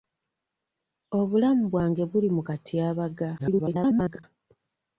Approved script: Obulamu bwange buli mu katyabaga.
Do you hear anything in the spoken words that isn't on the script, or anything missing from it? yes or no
yes